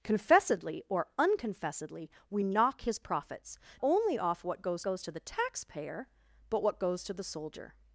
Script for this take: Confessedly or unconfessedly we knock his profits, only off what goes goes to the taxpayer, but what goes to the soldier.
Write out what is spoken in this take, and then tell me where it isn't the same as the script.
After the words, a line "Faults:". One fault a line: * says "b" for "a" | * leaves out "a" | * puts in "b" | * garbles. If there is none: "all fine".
Confessedly or unconfessedly we knock his profits, only off what goes goes to the taxpayer, but what goes to the soldier.
Faults:
all fine